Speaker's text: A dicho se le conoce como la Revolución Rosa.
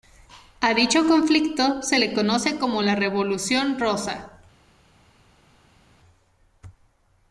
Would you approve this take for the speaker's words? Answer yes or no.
no